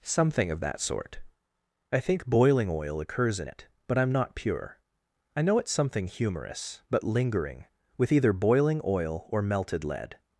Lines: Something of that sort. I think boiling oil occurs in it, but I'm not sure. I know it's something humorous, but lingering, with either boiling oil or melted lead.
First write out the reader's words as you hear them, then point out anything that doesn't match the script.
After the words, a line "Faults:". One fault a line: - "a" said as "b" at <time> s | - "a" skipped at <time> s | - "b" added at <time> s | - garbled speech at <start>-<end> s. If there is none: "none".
Something of that sort. I think boiling oil occurs in it, but I'm not pure. I know it's something humorous, but lingering, with either boiling oil or melted lead.
Faults:
- "sure" said as "pure" at 4.4 s